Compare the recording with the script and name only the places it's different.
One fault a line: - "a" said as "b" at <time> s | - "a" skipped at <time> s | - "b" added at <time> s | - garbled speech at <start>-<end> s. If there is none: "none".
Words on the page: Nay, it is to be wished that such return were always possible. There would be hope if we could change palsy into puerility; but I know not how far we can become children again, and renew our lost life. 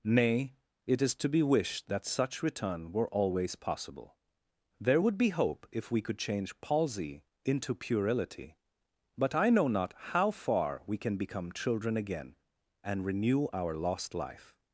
none